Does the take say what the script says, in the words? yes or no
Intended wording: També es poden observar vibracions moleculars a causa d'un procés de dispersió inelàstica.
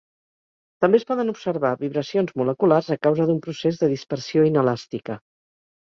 yes